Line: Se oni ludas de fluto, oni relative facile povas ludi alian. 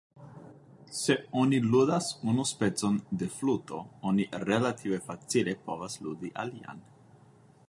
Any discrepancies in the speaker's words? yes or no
yes